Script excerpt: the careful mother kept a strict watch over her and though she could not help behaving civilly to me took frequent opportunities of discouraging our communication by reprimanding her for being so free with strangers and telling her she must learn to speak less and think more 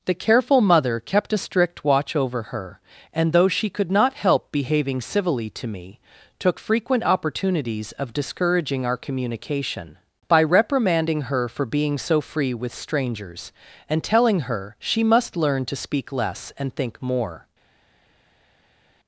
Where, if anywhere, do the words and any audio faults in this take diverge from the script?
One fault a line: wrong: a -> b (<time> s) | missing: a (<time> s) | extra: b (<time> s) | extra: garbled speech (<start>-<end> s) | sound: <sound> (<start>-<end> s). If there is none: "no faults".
no faults